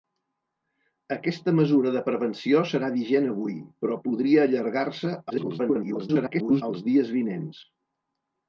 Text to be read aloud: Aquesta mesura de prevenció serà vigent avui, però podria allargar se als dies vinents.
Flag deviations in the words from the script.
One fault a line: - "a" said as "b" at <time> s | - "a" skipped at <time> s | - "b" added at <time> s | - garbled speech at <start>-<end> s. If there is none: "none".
- garbled speech at 5.3-6.6 s